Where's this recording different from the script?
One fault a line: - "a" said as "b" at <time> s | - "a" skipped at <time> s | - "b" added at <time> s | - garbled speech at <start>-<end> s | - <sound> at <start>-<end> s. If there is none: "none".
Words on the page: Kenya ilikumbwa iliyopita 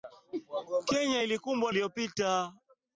none